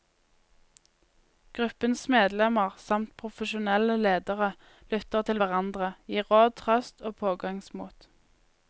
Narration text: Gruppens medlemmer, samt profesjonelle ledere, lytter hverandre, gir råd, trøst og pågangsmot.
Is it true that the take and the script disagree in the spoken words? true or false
true